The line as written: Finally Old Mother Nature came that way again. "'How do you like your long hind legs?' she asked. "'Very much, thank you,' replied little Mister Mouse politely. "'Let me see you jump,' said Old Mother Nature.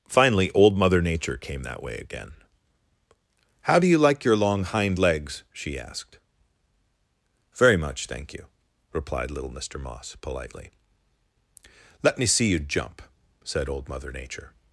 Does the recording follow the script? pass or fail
fail